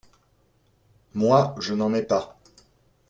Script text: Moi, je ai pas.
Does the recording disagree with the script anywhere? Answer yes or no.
yes